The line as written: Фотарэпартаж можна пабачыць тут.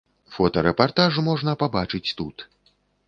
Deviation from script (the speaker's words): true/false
false